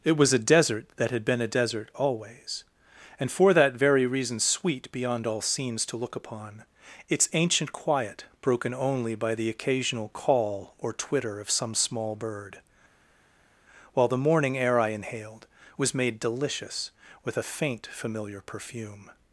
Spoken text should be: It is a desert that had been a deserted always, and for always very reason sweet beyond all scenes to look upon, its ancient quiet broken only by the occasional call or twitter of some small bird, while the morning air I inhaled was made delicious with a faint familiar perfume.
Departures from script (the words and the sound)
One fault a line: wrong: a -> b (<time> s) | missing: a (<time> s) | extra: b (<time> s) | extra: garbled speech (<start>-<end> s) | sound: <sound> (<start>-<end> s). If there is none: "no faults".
wrong: is -> was (0.2 s)
wrong: deserted -> desert (1.5 s)
wrong: always -> that (3.5 s)